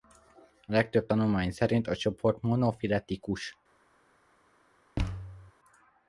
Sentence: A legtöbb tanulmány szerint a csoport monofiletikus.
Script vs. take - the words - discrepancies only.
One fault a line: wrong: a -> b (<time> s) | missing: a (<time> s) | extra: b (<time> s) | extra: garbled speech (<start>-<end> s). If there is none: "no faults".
no faults